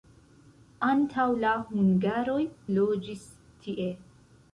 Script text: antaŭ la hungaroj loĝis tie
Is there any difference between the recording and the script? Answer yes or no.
no